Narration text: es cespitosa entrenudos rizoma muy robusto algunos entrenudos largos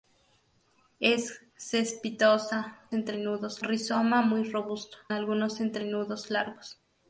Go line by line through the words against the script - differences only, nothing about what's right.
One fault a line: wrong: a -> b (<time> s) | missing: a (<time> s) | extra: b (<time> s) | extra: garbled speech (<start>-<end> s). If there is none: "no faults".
no faults